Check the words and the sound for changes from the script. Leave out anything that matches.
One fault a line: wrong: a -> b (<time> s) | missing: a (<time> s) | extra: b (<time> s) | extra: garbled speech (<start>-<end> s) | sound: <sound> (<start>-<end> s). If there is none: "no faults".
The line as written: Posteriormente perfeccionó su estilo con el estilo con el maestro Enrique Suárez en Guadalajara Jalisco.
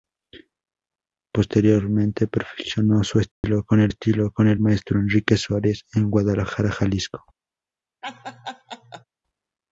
sound: dropout (3.3-3.4 s)
sound: laugh (8.0-9.0 s)